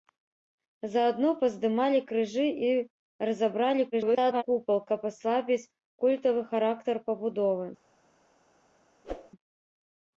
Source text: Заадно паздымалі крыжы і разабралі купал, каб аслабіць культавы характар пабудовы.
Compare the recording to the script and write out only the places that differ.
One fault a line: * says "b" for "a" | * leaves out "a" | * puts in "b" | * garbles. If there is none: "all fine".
* garbles